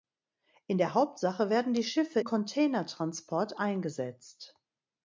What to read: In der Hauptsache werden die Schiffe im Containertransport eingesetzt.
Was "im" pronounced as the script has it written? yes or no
no